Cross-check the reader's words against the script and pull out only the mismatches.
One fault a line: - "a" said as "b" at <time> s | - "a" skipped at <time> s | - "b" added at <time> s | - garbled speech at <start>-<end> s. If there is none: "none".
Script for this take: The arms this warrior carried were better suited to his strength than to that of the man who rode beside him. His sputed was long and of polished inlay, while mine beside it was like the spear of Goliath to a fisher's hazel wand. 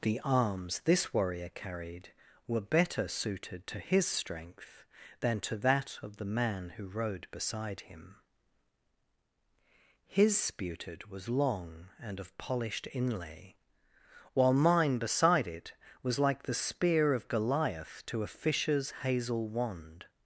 none